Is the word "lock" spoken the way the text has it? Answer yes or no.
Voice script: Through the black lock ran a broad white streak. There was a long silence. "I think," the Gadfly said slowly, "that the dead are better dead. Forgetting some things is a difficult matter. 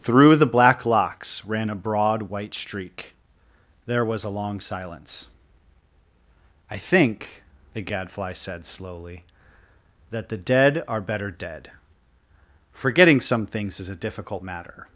no